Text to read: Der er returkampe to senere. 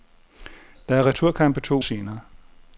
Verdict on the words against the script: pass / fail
pass